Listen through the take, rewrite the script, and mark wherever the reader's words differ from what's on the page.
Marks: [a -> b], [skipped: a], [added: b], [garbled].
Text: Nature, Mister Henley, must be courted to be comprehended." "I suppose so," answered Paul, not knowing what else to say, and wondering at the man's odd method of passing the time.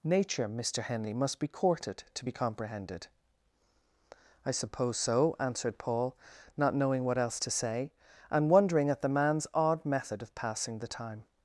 Nature, Mister Henley, must be courted to be comprehended." "I suppose so," answered Paul, not knowing what else to say, and wondering at the man's odd method of passing the time.